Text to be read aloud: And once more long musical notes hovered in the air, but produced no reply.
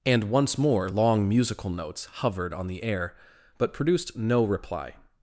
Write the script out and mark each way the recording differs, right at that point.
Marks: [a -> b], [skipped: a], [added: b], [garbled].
And once more long musical notes hovered [in -> on] the air, but produced no reply.